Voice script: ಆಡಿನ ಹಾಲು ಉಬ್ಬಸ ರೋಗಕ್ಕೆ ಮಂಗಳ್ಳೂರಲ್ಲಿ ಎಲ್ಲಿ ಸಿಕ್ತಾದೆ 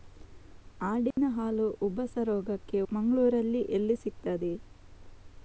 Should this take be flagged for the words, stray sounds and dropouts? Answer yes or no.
yes